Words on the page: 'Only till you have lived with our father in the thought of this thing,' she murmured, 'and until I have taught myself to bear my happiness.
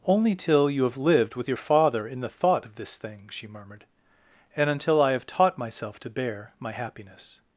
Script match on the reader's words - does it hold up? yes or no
no